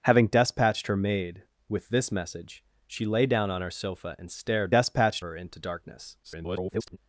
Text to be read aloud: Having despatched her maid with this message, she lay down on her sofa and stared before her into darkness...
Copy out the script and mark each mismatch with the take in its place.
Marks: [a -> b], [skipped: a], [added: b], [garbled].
Having despatched her maid with this message, she lay down on her sofa and stared [before -> despatched] her into darkness... [garbled]